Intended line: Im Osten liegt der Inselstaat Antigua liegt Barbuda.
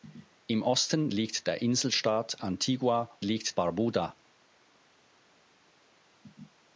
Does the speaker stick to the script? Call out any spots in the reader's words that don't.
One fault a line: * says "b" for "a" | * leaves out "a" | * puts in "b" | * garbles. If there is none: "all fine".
all fine